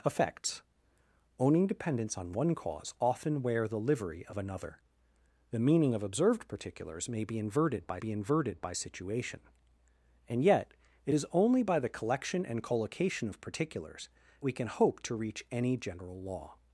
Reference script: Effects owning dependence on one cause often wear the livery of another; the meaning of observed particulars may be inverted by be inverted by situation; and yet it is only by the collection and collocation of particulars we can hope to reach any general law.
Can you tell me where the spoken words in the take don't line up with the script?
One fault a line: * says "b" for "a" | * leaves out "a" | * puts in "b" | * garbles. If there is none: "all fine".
all fine